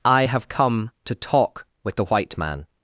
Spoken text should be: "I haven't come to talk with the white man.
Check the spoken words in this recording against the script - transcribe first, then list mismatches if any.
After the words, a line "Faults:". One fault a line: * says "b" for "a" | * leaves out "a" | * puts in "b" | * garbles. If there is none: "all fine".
"I have come to talk with the white man.
Faults:
* says "have" for "haven't"